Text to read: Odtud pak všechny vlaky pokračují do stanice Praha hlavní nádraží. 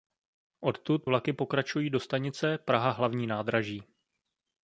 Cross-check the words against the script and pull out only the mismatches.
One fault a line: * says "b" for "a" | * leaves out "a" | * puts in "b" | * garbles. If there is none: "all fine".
* leaves out "pak všechny"